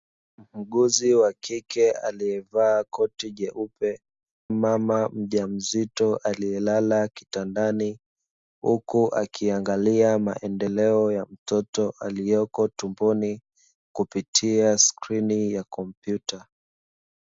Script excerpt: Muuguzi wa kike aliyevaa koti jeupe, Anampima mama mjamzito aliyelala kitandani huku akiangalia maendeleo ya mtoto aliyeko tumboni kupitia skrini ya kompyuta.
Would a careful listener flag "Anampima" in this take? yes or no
yes